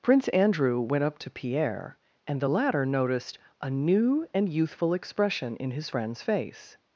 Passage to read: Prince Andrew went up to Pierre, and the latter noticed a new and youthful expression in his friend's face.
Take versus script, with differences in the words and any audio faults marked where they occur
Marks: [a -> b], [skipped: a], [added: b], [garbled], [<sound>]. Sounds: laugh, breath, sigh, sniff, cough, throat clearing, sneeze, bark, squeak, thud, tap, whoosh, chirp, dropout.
Prince Andrew went up to Pierre, and the latter noticed a new and youthful expression in his friend's face.